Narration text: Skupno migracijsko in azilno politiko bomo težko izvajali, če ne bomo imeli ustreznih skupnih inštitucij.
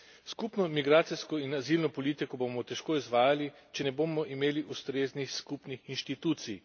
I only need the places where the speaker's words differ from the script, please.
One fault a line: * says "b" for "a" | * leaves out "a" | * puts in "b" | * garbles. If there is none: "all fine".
all fine